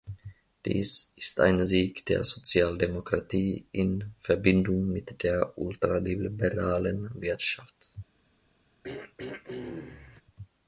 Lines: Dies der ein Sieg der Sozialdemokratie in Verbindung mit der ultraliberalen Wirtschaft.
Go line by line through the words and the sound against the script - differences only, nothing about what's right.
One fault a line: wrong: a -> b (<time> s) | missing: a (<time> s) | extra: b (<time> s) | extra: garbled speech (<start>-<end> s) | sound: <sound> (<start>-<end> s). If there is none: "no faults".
wrong: der -> ist (1.1 s)
sound: throat clearing (8.8-10.2 s)